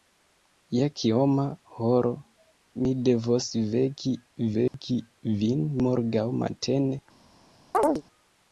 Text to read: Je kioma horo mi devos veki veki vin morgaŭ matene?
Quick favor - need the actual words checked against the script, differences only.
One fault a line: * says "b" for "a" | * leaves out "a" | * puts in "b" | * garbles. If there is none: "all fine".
all fine